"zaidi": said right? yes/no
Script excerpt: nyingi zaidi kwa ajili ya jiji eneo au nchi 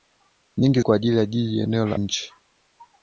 no